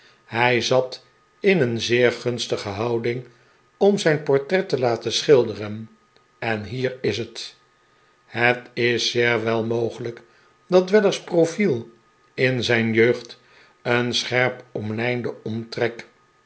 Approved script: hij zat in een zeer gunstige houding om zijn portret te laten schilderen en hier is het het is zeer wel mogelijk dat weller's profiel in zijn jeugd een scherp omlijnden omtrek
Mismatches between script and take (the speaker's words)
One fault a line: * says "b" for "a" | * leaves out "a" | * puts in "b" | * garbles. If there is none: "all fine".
all fine